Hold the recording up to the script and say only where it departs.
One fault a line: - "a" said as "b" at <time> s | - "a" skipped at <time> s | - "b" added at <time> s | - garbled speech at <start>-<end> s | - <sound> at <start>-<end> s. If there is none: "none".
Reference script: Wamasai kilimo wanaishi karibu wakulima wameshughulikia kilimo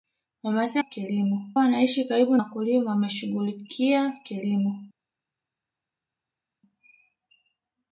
none